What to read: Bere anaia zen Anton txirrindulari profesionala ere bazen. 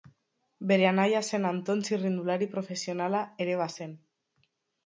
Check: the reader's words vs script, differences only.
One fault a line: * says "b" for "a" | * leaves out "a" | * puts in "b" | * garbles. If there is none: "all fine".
all fine